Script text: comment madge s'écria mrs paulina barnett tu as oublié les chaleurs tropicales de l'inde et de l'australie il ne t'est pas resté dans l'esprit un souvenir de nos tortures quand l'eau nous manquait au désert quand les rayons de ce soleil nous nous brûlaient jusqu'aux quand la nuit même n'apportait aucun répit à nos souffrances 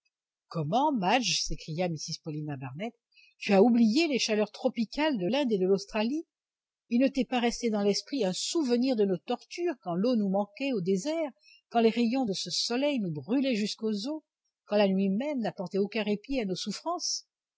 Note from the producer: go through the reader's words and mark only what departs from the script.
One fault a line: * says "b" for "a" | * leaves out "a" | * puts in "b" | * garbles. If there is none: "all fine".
* leaves out "nous"
* puts in "os"